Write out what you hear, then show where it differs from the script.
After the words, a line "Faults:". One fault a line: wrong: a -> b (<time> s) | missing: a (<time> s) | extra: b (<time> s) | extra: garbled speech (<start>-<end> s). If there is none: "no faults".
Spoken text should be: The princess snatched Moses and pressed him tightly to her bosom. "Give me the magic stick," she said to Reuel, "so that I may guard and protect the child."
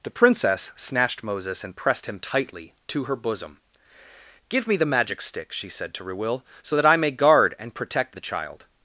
The princess snatched Moses and pressed him tightly to her bosom. "Give me the magic stick," she said to Reuel, "so that I may guard and protect the child."
Faults:
no faults